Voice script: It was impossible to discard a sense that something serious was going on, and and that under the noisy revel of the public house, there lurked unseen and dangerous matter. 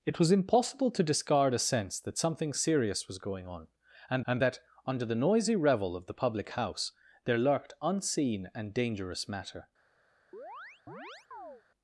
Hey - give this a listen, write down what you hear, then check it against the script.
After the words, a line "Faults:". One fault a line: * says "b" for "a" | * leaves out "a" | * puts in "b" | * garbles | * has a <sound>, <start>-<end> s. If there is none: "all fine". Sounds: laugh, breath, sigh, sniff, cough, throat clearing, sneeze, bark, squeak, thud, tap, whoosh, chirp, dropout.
It was impossible to discard a sense that something serious was going on, and and that under the noisy revel of the public house, there lurked unseen and dangerous matter.
Faults:
* has a chirp, 10.3-11.6 s